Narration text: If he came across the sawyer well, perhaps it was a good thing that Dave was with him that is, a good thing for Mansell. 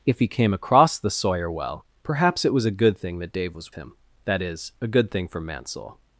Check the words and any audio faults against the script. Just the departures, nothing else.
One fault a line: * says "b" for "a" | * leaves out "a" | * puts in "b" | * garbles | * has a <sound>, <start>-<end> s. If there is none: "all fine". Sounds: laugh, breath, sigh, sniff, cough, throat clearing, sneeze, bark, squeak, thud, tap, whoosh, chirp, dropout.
* leaves out "with"